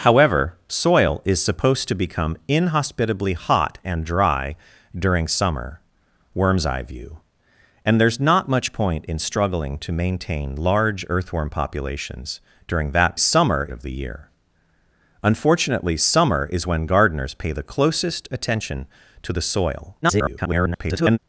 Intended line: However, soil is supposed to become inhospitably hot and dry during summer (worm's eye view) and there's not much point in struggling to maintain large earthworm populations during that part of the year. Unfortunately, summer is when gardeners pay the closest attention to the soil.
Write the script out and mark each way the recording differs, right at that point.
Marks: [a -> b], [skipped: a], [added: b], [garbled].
However, soil is supposed to become inhospitably hot and dry during summer (worm's eye view) and there's not much point in struggling to maintain large earthworm populations during that [part -> summer] of the year. Unfortunately, summer is when gardeners pay the closest attention to the soil. [garbled]